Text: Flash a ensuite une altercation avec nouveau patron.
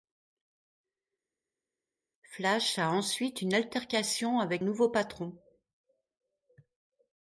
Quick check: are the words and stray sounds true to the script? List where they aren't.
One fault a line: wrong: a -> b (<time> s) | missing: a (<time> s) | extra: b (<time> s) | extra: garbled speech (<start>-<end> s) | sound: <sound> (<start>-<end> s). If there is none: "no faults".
no faults